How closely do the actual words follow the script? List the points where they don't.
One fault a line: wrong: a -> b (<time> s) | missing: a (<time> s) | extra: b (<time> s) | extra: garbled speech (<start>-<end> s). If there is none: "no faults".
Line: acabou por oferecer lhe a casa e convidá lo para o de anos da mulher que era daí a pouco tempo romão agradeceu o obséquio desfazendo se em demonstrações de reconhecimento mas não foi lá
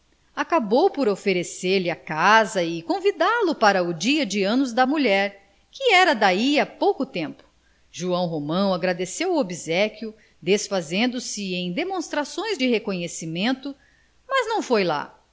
extra: dia (3.9 s)
extra: joão (7.9 s)